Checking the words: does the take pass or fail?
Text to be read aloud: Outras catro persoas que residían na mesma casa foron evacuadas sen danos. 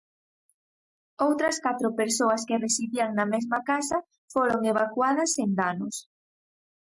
pass